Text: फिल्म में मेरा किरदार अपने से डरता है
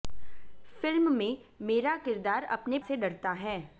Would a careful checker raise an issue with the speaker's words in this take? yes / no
no